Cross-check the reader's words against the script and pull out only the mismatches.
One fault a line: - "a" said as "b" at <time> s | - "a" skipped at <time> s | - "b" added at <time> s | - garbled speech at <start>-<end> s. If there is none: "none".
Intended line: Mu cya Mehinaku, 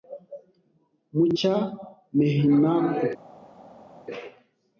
none